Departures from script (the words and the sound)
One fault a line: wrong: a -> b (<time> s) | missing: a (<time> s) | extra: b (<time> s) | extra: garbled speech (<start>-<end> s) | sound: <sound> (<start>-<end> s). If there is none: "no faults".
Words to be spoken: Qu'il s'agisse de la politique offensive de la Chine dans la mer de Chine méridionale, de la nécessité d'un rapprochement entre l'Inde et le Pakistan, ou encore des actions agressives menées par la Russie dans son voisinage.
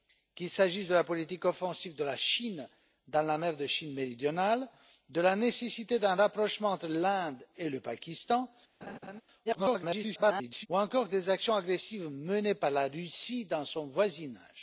sound: laugh (8.8-9.2 s)
extra: garbled speech (9.4-10.7 s)